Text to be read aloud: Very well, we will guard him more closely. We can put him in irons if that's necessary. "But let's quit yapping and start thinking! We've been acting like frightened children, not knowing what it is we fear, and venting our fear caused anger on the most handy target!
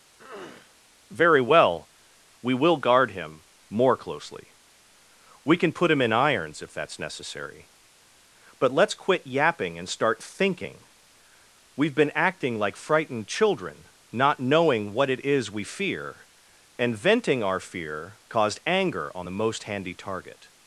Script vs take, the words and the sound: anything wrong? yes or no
yes